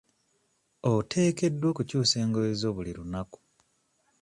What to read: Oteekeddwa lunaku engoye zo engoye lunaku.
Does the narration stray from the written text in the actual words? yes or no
yes